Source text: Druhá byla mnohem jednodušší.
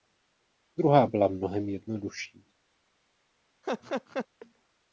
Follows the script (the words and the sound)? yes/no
no